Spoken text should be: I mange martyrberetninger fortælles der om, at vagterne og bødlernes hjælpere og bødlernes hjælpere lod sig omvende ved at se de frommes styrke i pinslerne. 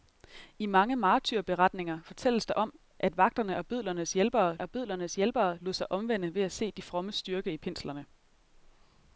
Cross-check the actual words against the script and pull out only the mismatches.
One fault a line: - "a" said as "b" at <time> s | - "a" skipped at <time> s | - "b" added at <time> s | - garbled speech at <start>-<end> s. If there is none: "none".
none